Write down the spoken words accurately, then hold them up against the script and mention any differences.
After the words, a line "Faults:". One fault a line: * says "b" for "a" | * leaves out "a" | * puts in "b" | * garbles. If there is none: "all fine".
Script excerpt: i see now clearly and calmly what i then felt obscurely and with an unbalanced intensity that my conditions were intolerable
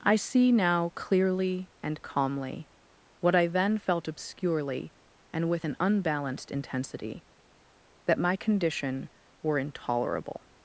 i see now clearly and calmly what i then felt obscurely and with an unbalanced intensity that my condition were intolerable
Faults:
* says "condition" for "conditions"